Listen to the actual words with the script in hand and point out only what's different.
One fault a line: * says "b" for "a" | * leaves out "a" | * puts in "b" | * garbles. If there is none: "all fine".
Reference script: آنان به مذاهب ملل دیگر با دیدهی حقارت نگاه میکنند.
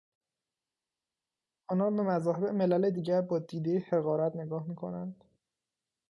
all fine